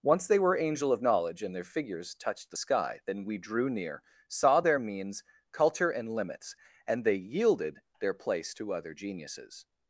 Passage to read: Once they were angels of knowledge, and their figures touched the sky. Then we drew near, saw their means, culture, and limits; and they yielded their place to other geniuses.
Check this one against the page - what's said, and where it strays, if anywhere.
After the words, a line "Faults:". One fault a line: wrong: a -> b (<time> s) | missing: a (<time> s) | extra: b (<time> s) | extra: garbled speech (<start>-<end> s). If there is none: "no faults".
Once they were angel of knowledge, and their figures touched the sky. Then we drew near, saw their means, culture, and limits; and they yielded their place to other geniuses.
Faults:
wrong: angels -> angel (0.6 s)